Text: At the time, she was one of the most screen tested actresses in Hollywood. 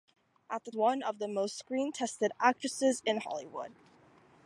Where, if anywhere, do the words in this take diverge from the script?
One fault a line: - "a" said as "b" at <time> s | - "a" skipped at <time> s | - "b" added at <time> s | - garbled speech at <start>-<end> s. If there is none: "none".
- "time she was" skipped at 0.7 s